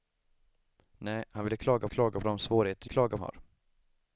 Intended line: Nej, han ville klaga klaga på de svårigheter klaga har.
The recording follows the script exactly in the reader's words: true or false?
true